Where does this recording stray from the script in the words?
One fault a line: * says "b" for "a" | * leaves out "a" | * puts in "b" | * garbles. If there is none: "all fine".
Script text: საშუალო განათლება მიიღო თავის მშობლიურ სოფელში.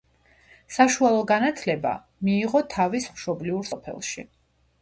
all fine